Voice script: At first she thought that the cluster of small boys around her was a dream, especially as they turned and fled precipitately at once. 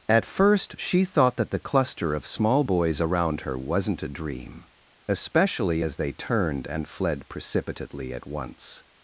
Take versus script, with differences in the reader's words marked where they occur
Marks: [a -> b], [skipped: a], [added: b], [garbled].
At first she thought that the cluster of small boys around her [was -> wasn't] a dream, especially as they turned and fled precipitately at once.